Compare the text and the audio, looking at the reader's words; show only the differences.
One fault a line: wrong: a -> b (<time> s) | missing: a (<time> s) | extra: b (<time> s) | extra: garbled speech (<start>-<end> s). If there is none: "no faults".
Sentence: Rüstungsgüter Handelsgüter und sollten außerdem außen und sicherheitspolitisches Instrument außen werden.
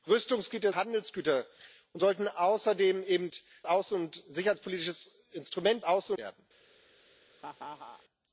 no faults